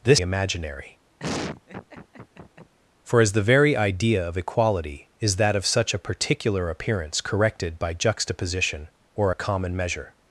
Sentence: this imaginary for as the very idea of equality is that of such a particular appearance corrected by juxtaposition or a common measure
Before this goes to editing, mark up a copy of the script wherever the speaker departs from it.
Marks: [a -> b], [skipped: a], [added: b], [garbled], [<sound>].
this imaginary [laugh] for as the very idea of equality is that of such a particular appearance corrected by juxtaposition or a common measure